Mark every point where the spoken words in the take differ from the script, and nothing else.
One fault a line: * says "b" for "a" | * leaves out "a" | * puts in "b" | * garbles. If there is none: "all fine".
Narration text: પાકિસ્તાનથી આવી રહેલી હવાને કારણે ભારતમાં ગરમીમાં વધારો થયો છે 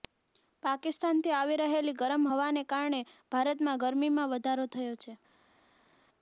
* puts in "ગરમ"